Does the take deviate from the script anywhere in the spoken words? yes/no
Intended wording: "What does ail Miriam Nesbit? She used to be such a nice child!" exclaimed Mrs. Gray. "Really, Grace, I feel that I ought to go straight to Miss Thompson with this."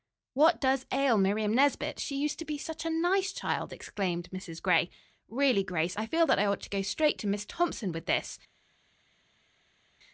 no